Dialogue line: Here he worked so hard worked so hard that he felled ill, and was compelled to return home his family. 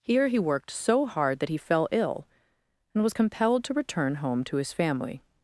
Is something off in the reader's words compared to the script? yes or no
yes